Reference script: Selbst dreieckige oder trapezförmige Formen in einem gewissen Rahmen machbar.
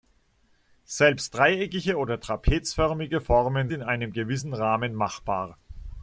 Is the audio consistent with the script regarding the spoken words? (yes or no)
yes